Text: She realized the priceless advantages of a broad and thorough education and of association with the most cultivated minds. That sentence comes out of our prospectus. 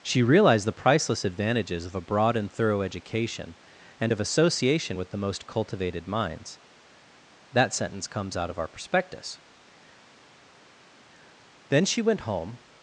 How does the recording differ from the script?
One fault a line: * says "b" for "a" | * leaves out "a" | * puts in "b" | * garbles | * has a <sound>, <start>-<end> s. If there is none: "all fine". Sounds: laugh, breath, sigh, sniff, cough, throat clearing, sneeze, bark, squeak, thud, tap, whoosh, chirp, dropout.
* puts in "Then she went home"